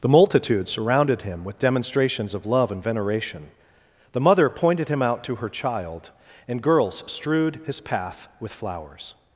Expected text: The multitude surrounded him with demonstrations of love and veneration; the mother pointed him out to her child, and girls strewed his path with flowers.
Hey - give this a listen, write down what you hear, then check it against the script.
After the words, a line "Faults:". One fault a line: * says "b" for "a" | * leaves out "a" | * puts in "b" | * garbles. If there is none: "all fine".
The multitude surrounded him with demonstrations of love and veneration; the mother pointed him out to her child, and girls strewed his path with flowers.
Faults:
all fine